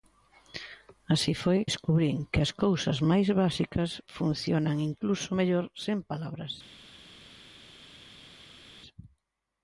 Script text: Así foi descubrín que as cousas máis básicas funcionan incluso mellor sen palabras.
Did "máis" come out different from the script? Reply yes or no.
no